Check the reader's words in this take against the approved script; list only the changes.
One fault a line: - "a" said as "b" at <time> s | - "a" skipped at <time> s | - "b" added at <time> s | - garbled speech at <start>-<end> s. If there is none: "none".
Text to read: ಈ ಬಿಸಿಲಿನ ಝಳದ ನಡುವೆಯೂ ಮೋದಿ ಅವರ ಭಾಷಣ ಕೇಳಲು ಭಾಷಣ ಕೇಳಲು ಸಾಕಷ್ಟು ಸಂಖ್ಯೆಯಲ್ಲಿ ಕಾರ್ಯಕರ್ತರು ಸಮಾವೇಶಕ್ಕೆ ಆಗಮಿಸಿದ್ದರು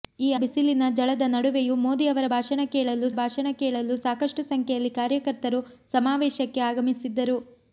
none